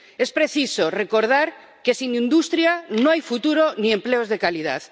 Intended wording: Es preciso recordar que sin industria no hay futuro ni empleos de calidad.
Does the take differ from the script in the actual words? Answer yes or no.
no